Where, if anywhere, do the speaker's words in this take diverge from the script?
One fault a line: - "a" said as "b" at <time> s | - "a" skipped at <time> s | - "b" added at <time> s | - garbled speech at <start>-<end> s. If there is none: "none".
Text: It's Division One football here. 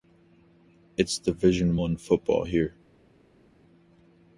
none